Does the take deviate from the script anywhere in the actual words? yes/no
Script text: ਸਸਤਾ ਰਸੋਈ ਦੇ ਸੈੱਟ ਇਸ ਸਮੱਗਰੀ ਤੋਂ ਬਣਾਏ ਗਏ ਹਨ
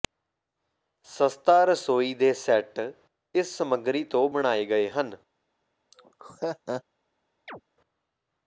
no